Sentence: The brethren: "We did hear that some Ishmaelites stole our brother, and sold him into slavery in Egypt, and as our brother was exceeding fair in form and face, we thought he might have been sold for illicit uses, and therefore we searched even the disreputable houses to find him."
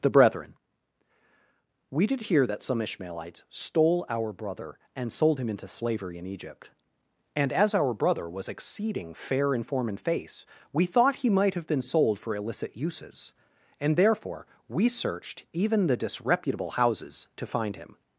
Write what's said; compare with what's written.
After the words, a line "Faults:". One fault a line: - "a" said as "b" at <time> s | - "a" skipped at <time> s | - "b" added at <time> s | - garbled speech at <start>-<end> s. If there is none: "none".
The brethren: "We did hear that some Ishmaelites stole our brother, and sold him into slavery in Egypt, and as our brother was exceeding fair in form and face, we thought he might have been sold for illicit uses, and therefore we searched even the disreputable houses to find him."
Faults:
none